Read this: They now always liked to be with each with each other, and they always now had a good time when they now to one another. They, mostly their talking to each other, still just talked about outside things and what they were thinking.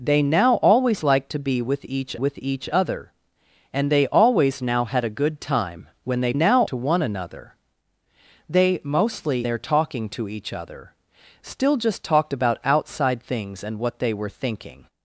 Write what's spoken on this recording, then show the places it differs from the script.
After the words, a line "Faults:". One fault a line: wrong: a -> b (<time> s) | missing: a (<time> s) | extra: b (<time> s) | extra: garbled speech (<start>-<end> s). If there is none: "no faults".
They now always liked to be with each with each other, and they always now had a good time when they now to one another. They, mostly their talking to each other, still just talked about outside things and what they were thinking.
Faults:
no faults